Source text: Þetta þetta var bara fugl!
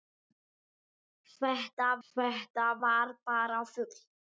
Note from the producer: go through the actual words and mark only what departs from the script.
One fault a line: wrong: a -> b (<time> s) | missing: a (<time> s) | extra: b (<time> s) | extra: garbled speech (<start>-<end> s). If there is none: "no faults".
no faults